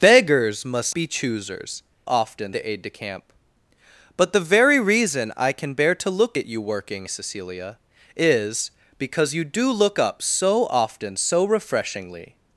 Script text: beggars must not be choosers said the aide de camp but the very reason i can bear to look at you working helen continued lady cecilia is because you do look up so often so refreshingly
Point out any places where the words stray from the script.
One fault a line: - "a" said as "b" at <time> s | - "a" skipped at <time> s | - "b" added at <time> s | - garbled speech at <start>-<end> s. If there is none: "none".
- "not" skipped at 0.9 s
- "said" said as "often" at 2.1 s
- "helen continued lady" skipped at 7.1 s